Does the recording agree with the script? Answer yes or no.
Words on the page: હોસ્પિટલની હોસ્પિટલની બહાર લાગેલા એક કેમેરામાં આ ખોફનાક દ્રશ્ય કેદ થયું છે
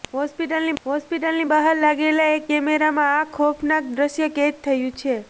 yes